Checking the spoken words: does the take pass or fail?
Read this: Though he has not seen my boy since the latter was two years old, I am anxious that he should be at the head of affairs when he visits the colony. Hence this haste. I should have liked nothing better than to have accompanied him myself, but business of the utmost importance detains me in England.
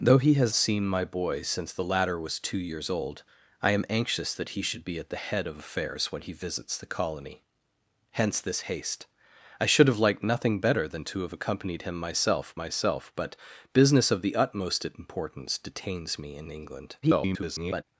fail